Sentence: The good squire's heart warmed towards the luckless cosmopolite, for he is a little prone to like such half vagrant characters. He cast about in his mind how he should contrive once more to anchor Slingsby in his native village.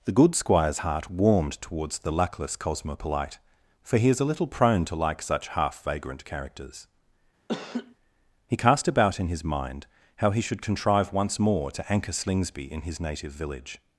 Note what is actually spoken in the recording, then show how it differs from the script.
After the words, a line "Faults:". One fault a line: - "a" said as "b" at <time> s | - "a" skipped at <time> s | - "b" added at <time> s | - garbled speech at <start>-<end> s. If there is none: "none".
The good squire's heart warmed towards the luckless cosmopolite, for he is a little prone to like such half vagrant characters. He cast about in his mind how he should contrive once more to anchor Slingsby in his native village.
Faults:
none